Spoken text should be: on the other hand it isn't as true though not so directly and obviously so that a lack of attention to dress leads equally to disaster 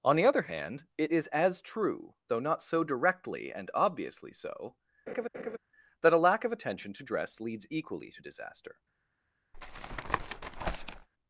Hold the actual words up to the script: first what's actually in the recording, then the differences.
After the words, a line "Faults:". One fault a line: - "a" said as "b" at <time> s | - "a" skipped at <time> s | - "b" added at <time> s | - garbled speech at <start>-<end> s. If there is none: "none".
on the other hand it is as true though not so directly and obviously so that a lack of attention to dress leads equally to disaster
Faults:
- "isn't" said as "is" at 1.1 s